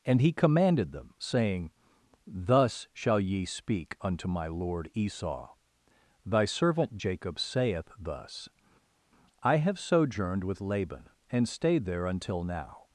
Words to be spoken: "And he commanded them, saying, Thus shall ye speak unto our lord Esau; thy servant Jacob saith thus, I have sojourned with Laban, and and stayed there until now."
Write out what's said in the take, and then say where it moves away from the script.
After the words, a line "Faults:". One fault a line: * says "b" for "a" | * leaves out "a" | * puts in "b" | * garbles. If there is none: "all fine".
"And he commanded them, saying, Thus shall ye speak unto my lord Esau; thy servant Jacob saith thus, I have sojourned with Laban, and stayed there until now."
Faults:
* says "my" for "our"
* leaves out "and"